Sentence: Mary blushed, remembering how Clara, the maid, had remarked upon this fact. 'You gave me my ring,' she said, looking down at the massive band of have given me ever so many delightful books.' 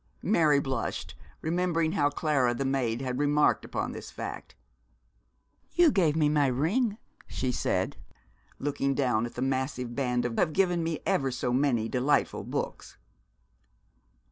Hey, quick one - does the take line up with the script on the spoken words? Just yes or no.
yes